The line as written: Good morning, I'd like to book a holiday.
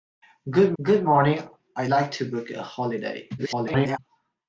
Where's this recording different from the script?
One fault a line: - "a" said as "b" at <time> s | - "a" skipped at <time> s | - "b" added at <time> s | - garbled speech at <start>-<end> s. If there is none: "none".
- "good" added at 0.8 s
- garbled speech at 3.4-4.0 s